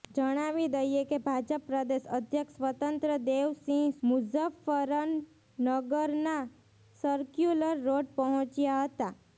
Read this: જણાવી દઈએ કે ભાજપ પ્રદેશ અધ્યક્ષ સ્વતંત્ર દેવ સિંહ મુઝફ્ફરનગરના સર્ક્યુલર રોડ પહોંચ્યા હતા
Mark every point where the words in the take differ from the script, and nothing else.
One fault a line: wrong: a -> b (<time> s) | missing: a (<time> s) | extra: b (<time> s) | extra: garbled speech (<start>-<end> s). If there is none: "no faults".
no faults